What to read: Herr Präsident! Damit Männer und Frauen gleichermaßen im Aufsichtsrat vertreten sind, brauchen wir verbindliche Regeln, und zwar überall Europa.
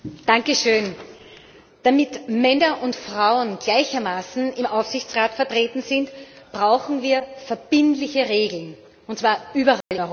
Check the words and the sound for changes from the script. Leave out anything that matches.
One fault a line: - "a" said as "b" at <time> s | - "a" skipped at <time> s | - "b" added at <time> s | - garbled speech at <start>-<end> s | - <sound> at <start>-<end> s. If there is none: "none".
- dropout at 9.8-9.9 s